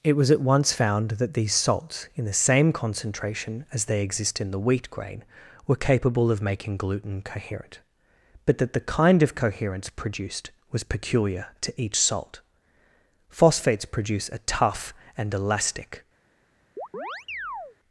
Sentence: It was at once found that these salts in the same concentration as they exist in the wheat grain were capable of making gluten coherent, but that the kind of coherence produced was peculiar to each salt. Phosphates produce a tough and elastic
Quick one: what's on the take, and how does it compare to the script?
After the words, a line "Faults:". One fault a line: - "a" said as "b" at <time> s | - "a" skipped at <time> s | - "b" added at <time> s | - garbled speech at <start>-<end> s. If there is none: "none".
It was at once found that these salts in the same concentration as they exist in the wheat grain were capable of making gluten coherent, but that the kind of coherence produced was peculiar to each salt. Phosphates produce a tough and elastic
Faults:
none